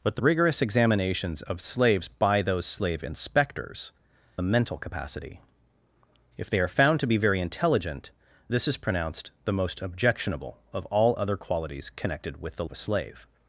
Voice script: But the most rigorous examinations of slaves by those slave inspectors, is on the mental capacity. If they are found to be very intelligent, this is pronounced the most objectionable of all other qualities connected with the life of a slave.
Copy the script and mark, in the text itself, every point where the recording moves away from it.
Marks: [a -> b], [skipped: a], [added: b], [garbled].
But the [skipped: most] rigorous examinations of slaves by those slave inspectors, [skipped: is on] the mental capacity. If they are found to be very intelligent, this is pronounced the most objectionable of all other qualities connected with the [skipped: life] of a slave.